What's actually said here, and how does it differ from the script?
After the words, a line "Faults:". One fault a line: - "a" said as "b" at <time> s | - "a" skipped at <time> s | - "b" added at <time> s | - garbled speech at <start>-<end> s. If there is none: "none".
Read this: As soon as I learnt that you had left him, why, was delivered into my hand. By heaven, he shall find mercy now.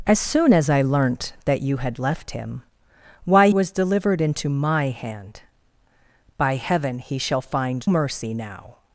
As soon as I learnt that you had left him, why, was delivered into my hand. By heaven, he shall find mercy now.
Faults:
none